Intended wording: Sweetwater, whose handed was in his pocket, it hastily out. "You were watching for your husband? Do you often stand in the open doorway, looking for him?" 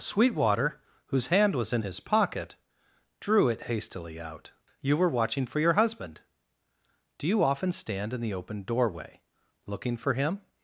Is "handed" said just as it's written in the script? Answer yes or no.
no